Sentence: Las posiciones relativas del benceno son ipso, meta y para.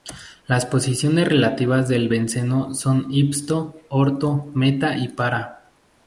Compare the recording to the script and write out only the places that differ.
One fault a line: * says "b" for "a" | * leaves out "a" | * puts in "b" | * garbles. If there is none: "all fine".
* puts in "orto"